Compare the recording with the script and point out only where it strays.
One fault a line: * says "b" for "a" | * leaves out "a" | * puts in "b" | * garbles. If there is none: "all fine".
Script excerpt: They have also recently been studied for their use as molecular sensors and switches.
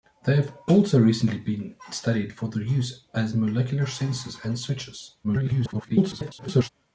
* garbles